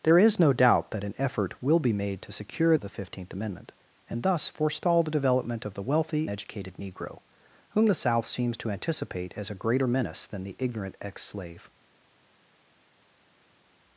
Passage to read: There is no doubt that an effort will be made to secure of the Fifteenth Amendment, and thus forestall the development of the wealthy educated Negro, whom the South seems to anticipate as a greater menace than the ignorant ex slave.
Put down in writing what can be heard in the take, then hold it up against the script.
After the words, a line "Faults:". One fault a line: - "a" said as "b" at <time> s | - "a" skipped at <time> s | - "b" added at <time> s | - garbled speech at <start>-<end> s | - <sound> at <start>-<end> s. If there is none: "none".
There is no doubt that an effort will be made to secure of the Fifteenth Amendment, and thus forestall the development of the wealthy educated Negro, whom the South seems to anticipate as a greater menace than the ignorant ex slave.
Faults:
none